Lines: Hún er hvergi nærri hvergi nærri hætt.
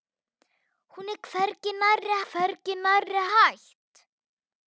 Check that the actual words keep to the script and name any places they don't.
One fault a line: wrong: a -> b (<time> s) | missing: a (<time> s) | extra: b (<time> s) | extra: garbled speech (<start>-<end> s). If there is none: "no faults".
no faults